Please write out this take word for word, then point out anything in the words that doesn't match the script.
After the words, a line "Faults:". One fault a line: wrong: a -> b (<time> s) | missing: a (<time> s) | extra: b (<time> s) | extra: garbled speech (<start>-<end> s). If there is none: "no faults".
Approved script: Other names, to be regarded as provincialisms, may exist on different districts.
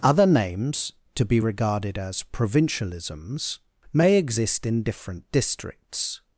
Other names, to be regarded as provincialisms, may exist in different districts.
Faults:
wrong: on -> in (4.6 s)